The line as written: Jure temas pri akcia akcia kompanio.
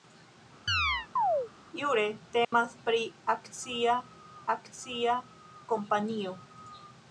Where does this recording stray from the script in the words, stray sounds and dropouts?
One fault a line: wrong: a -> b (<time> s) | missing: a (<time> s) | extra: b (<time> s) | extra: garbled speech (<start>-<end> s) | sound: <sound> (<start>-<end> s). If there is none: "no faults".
sound: chirp (0.7-1.5 s)
sound: dropout (2.4-2.5 s)